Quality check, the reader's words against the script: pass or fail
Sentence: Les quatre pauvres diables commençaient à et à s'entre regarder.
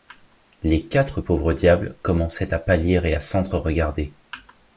fail